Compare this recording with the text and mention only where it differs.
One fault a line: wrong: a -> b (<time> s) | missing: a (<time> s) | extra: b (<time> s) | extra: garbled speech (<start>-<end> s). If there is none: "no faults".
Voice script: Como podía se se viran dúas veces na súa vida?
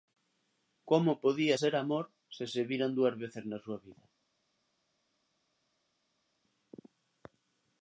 extra: ser amor (1.6 s)